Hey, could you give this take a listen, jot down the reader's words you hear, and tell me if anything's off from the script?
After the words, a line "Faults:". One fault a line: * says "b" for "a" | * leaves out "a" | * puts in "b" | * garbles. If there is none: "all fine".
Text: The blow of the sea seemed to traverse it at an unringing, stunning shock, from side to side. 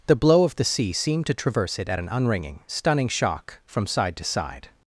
The blow of the sea seemed to traverse it at an unringing, stunning shock, from side to side.
Faults:
all fine